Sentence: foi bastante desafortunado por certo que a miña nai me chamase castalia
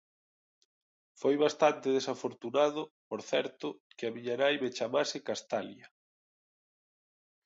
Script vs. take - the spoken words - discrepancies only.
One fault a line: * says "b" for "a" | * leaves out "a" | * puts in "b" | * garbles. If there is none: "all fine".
all fine